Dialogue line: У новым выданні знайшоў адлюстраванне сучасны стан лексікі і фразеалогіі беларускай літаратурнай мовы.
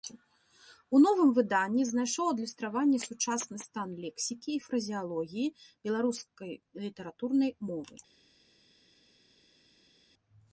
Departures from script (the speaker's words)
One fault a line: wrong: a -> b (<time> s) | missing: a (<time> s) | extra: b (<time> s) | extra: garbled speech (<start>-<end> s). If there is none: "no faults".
no faults